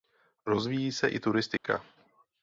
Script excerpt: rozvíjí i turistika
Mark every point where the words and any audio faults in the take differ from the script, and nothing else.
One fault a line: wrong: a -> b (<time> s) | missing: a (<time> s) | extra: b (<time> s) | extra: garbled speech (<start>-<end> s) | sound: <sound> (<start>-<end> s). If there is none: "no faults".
extra: se (0.9 s)
sound: dropout (1.6-1.6 s)